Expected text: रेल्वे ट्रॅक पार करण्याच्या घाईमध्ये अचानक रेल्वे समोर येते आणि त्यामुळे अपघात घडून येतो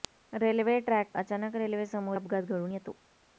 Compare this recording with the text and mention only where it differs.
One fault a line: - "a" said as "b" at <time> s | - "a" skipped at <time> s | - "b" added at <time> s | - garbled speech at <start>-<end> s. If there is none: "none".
- "पार करण्याच्या घाईमध्ये" skipped at 1.1 s
- "येते आणि त्यामुळे" skipped at 2.2 s